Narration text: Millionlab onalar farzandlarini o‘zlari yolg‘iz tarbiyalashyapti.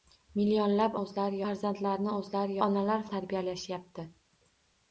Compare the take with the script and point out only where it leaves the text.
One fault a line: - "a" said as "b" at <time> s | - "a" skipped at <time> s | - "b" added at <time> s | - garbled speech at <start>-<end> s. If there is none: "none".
- "onalar" said as "o‘zlari" at 1.0 s
- "yolg‘iz" said as "onalar" at 2.6 s